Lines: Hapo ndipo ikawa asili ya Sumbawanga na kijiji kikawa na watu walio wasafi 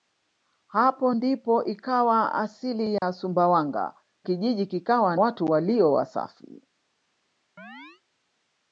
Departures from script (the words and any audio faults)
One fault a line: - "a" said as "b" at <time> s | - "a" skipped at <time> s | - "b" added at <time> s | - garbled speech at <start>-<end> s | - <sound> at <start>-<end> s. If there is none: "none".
- dropout at 3.0-3.0 s
- "na" skipped at 4.0 s
- "na" skipped at 5.2 s
- chirp at 7.6-8.0 s